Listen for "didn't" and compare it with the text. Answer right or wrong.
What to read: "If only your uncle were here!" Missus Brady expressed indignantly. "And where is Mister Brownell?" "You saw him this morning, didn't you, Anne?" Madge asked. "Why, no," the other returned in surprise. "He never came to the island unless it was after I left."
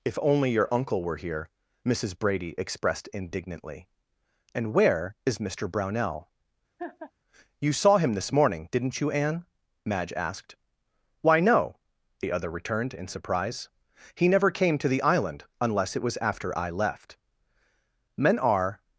right